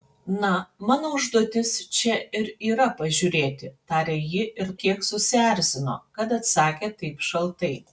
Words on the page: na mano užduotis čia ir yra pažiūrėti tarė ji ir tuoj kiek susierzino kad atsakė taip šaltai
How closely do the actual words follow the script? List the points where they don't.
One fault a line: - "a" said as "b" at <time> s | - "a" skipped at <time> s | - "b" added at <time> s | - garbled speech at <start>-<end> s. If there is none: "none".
- "tuoj" skipped at 4.7 s